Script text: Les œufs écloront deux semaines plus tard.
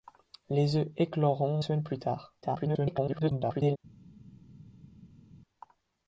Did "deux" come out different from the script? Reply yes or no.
yes